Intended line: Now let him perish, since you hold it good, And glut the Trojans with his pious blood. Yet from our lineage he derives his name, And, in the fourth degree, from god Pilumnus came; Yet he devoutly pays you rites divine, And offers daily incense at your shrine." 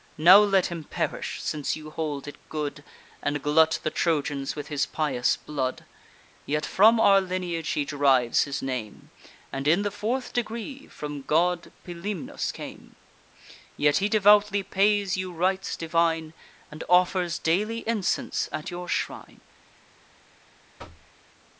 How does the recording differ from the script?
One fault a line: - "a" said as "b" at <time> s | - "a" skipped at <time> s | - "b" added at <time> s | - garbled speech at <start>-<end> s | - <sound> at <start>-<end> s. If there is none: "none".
- thud at 20.8-21.1 s